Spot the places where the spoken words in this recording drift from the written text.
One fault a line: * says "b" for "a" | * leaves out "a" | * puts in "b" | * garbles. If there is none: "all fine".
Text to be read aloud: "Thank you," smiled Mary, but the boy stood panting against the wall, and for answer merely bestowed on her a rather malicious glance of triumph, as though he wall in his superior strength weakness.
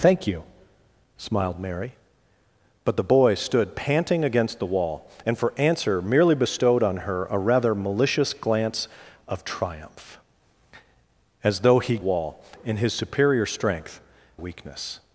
all fine